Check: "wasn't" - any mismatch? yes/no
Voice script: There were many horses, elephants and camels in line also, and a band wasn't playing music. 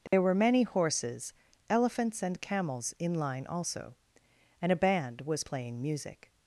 yes